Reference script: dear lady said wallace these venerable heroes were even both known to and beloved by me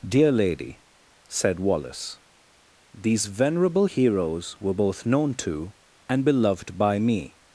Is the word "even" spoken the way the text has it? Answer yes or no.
no